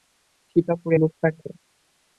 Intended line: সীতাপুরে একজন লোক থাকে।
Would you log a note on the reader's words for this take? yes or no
yes